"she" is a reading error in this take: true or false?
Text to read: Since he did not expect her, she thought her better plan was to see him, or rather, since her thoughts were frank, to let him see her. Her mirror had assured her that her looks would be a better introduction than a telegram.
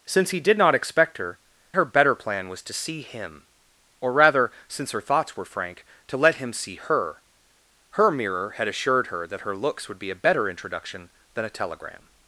true